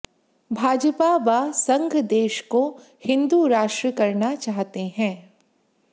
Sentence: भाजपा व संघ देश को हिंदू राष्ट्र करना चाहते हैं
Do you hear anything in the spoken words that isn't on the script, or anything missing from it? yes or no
no